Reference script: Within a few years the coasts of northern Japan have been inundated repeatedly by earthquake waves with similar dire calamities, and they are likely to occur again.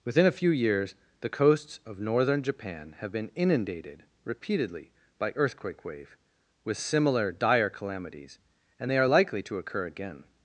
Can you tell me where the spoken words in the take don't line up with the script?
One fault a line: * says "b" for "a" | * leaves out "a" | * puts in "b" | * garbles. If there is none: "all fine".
* says "wave" for "waves"